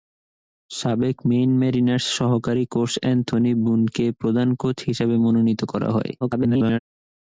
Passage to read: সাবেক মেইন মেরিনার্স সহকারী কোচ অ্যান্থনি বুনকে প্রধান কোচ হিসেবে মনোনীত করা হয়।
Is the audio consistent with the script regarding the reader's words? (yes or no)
no